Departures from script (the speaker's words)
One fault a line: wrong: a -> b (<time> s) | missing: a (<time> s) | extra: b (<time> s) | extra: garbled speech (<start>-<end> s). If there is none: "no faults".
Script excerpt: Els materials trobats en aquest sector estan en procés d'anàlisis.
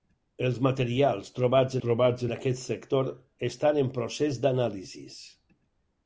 extra: trobats (1.8 s)